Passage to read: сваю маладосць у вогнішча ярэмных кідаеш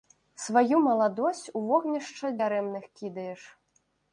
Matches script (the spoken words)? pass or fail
pass